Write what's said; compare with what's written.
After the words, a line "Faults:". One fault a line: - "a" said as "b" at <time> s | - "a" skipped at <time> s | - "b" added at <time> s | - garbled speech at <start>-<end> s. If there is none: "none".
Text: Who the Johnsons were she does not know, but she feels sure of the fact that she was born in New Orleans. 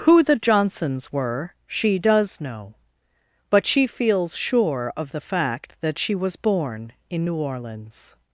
Who the Johnsons were she does know, but she feels sure of the fact that she was born in New Orleans.
Faults:
- "not" skipped at 2.4 s